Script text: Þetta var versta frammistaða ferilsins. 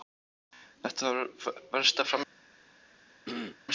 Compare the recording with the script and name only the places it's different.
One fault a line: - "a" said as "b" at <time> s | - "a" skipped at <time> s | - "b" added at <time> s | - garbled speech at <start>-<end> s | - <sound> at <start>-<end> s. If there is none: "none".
- throat clearing at 3.3-3.6 s